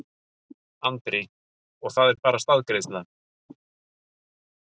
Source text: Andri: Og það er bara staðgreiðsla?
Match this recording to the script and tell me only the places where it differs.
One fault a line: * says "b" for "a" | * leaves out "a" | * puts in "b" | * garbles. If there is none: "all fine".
all fine